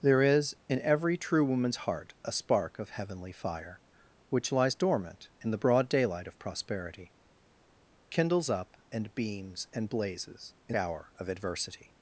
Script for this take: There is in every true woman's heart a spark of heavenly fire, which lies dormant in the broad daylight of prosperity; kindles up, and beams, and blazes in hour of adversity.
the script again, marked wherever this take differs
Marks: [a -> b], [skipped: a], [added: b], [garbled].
There is in every true woman's heart a spark of heavenly fire, which lies dormant in the broad daylight of prosperity; kindles up, and beams, and blazes in hour of adversity.